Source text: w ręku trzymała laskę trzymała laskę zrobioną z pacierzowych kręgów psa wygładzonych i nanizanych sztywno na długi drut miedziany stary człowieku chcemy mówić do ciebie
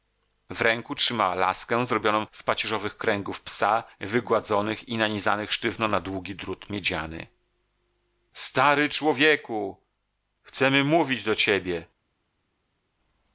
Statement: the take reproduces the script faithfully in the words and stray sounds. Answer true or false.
false